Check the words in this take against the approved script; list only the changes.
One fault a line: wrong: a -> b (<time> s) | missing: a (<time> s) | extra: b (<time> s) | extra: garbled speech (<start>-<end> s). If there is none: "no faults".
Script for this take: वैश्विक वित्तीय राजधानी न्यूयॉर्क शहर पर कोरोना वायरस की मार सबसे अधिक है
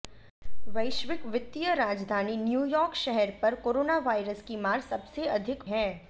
no faults